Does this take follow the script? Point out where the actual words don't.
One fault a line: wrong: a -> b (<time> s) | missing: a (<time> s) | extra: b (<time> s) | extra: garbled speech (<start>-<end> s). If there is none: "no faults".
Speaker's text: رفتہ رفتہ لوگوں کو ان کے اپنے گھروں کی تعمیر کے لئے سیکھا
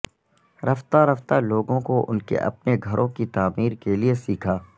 no faults